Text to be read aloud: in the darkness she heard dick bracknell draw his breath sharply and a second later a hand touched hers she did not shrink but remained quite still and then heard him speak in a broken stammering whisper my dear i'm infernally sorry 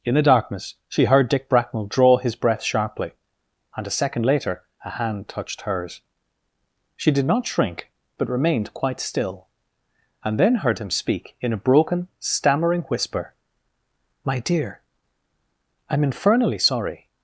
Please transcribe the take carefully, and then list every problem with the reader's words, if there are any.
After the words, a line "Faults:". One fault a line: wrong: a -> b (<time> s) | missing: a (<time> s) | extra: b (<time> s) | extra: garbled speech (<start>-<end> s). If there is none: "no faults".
in the darkness she heard dick bracknell draw his breath sharply and a second later a hand touched hers she did not shrink but remained quite still and then heard him speak in a broken stammering whisper my dear i'm infernally sorry
Faults:
no faults